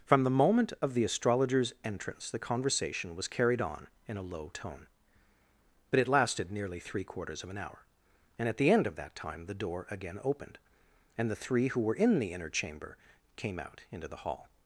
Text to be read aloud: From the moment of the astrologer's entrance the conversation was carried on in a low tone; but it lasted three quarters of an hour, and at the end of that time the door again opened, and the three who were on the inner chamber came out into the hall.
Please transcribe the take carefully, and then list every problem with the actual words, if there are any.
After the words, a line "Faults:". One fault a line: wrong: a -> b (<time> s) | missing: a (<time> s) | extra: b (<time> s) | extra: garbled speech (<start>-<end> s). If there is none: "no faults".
From the moment of the astrologer's entrance the conversation was carried on in a low tone; but it lasted nearly three quarters of an hour, and at the end of that time the door again opened, and the three who were in the inner chamber came out into the hall.
Faults:
extra: nearly (6.5 s)
wrong: on -> in (11.9 s)